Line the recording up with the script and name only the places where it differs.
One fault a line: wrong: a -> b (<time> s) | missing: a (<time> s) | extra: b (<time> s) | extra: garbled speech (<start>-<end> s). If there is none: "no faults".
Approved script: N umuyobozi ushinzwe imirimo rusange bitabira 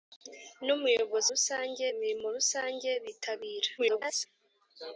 wrong: ushinzwe -> rusange (1.3 s)
extra: garbled speech (3.8-4.3 s)